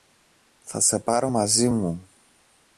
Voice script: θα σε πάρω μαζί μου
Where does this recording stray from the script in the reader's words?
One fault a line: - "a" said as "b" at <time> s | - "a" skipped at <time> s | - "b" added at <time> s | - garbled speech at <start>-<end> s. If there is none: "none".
none